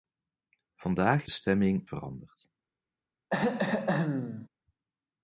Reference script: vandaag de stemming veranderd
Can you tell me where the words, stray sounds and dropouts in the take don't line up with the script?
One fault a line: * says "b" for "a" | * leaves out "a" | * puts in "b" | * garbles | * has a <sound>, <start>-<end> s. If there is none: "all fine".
* has a throat clearing, 3.3-4.5 s